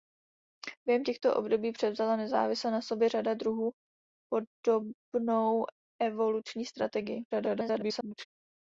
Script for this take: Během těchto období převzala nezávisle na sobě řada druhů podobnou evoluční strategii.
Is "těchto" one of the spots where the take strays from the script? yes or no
no